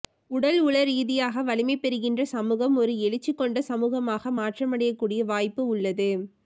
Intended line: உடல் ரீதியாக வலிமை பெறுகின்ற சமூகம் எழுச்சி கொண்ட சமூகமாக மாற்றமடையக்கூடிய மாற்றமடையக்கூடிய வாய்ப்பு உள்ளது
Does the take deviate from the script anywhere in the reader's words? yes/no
yes